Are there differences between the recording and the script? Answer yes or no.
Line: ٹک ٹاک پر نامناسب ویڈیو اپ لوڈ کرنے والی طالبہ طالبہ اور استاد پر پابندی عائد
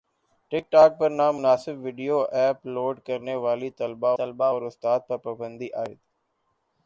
no